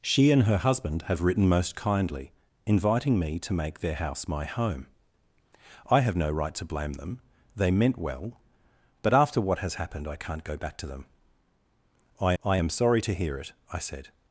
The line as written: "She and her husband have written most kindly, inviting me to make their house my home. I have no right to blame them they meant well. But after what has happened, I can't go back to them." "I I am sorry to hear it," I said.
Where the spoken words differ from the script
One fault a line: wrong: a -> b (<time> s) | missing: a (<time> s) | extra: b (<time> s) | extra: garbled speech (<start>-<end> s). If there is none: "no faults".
no faults